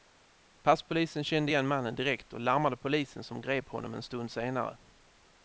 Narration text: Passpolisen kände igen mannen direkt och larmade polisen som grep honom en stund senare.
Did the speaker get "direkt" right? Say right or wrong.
right